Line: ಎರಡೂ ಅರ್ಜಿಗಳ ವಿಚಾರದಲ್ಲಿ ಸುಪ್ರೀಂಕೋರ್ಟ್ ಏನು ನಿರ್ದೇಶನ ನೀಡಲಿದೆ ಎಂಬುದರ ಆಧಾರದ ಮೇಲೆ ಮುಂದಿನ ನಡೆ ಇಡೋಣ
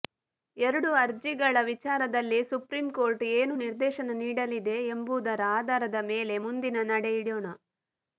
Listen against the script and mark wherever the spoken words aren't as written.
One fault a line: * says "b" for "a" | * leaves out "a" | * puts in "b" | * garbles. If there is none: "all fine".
all fine